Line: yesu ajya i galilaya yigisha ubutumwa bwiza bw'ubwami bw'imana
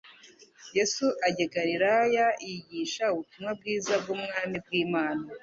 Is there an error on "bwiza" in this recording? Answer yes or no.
no